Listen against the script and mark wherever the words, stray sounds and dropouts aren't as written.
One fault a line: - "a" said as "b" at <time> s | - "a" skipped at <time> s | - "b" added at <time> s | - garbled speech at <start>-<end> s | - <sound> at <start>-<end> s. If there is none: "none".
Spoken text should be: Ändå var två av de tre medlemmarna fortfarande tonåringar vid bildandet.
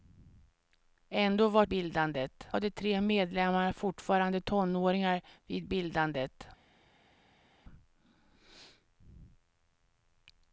- "två" said as "bildandet" at 1.7 s